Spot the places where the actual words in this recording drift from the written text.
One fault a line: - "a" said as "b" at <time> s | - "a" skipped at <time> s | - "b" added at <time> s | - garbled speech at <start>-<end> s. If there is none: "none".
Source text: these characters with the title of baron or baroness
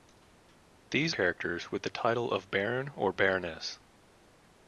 none